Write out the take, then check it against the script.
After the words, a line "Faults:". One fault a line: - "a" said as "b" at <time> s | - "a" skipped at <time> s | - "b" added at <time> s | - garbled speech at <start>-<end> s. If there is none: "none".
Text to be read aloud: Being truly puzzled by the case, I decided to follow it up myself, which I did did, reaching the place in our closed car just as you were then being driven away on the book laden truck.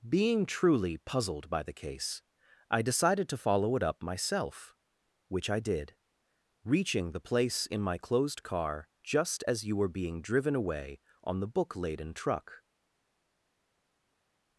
Being truly puzzled by the case, I decided to follow it up myself, which I did, reaching the place in my closed car just as you were being driven away on the book laden truck.
Faults:
- "did" skipped at 6.0 s
- "our" said as "my" at 7.8 s
- "then" skipped at 9.9 s